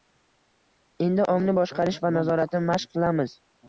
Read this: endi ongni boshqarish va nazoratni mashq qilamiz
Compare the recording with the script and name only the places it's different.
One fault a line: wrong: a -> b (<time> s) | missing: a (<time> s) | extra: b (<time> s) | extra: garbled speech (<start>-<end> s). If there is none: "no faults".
no faults